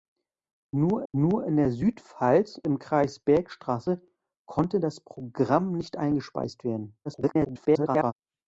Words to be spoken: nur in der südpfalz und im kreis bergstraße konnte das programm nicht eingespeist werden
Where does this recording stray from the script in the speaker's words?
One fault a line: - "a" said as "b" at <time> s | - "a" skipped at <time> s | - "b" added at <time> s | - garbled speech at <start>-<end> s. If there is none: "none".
- "nur" added at 1.1 s
- "und" skipped at 2.6 s
- garbled speech at 7.0-8.1 s